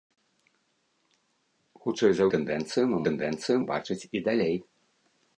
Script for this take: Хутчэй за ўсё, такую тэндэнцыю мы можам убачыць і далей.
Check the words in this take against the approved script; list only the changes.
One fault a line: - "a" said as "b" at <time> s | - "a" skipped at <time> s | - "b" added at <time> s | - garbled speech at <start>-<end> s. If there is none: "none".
- "ўсё такую" skipped at 2.2 s
- "можам" said as "тэндэнцыю" at 3.1 s